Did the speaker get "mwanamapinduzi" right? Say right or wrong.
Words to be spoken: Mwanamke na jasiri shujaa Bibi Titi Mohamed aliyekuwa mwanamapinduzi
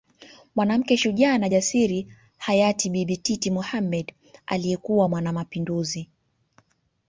right